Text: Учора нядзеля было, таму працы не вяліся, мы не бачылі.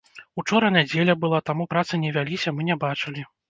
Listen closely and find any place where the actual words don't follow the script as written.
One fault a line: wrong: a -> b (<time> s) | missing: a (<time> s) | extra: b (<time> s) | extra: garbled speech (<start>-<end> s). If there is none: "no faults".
wrong: было -> была (1.2 s)